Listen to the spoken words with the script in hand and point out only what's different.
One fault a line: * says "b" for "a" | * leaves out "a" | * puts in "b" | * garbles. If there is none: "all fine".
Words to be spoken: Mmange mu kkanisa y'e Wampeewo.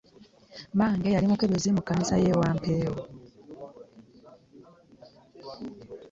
* puts in "yali mukebezi"